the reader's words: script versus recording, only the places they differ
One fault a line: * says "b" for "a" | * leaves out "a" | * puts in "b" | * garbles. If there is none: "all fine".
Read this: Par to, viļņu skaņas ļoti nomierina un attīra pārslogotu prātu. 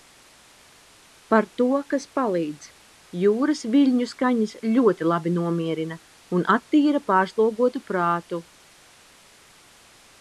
* puts in "kas palīdz Jūras"
* puts in "labi"